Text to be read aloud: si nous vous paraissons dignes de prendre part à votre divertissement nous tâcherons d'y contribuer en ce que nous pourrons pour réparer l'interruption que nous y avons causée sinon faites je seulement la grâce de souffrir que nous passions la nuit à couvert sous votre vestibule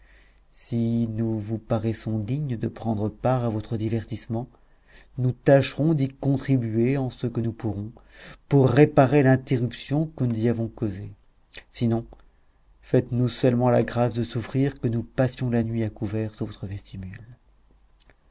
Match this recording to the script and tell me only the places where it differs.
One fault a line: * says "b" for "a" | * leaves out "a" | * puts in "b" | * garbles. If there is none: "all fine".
* says "nous" for "je"